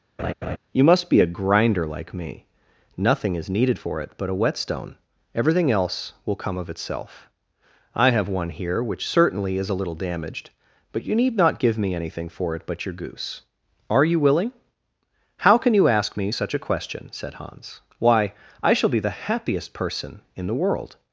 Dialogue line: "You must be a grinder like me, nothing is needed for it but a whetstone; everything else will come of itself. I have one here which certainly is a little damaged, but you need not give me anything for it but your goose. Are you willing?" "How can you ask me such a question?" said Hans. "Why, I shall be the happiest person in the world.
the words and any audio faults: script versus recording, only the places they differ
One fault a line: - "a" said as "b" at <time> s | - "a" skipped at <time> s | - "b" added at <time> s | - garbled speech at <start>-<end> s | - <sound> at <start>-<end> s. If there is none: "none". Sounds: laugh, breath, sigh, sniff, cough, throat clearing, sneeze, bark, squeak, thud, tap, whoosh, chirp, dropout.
- laugh at 0.2-0.6 s